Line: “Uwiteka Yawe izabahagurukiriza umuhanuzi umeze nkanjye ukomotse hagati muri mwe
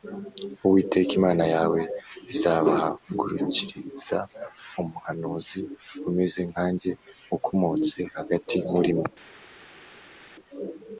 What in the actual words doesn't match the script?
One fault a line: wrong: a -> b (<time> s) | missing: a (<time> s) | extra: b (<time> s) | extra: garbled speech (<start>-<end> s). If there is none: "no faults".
extra: Imana (1.2 s)